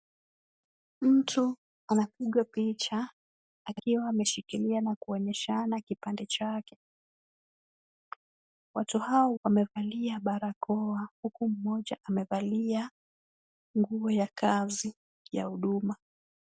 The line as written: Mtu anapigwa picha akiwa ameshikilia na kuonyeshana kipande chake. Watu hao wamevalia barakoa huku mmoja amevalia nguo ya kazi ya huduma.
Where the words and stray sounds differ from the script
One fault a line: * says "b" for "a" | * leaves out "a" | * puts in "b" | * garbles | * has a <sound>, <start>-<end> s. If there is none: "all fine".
all fine